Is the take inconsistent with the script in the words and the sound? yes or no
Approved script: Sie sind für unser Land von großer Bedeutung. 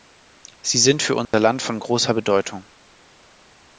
yes